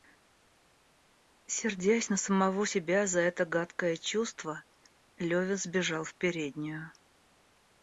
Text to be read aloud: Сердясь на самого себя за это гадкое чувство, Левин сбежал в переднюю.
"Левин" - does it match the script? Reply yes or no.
yes